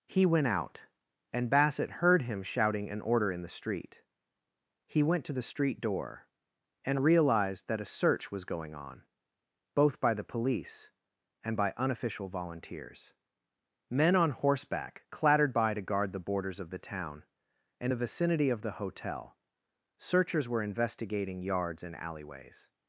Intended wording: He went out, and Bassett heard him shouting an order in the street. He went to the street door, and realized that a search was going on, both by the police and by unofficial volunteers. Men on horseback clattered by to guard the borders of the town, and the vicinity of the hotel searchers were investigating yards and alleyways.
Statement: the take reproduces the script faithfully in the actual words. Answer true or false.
true